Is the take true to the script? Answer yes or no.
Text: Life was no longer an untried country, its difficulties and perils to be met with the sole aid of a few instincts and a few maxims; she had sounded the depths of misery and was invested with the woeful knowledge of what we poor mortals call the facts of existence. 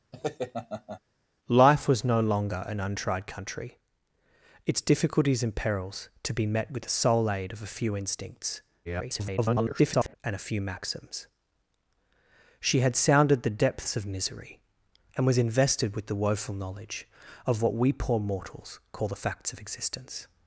no